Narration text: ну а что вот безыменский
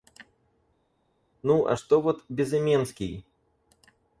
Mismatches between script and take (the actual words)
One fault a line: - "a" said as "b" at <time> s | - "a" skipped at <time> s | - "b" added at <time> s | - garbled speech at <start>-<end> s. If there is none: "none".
none